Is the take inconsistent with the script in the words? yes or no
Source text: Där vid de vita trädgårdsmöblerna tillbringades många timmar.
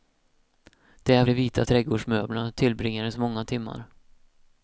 yes